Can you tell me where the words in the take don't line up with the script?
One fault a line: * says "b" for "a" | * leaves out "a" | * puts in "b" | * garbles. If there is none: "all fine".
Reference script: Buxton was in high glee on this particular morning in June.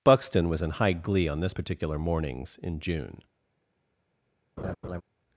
* says "mornings" for "morning"